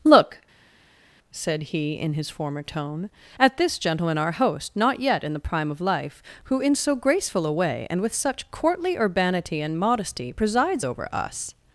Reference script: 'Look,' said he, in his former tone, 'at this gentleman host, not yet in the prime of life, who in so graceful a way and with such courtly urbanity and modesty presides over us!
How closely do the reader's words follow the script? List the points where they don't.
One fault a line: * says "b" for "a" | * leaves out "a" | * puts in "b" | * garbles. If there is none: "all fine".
* puts in "our"